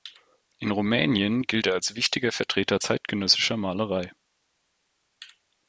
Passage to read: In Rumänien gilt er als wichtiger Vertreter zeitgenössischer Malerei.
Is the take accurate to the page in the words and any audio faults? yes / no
yes